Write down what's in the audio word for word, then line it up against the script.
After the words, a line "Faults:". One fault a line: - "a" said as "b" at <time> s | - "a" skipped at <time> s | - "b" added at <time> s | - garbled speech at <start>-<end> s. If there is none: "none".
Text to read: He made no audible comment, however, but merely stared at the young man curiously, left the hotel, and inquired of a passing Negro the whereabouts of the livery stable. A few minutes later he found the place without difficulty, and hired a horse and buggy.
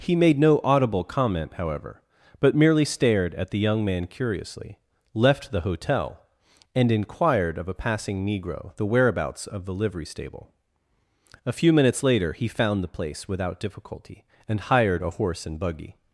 He made no audible comment, however, but merely stared at the young man curiously, left the hotel, and inquired of a passing Negro the whereabouts of the livery stable. A few minutes later he found the place without difficulty, and hired a horse and buggy.
Faults:
none